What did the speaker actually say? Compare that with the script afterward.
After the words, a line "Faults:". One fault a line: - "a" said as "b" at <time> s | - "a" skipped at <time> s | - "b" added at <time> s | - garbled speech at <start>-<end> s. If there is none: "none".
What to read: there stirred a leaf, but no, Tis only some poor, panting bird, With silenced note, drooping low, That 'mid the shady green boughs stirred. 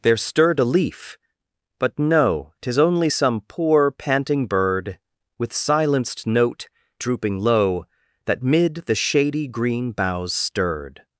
there stirred a leaf, but no, Tis only some poor, panting bird, With silenced note, drooping low, That 'mid the shady green boughs stirred.
Faults:
none